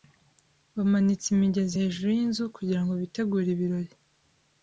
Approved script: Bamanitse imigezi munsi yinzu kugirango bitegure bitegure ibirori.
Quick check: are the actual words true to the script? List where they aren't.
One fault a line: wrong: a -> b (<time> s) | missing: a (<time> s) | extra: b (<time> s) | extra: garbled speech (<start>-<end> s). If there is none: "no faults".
wrong: munsi -> hejuru (1.8 s)
missing: bitegure (3.5 s)